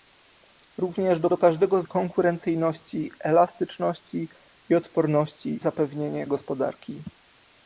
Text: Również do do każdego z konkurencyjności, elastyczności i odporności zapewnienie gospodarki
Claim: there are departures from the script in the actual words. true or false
false